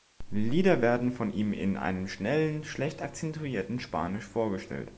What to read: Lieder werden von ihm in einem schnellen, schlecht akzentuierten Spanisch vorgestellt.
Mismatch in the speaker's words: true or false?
false